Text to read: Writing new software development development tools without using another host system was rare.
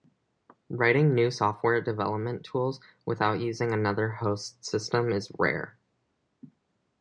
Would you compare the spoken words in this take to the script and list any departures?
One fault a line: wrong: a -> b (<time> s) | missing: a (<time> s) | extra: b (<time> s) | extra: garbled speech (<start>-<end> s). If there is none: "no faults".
missing: development (2.4 s)
wrong: was -> is (5.1 s)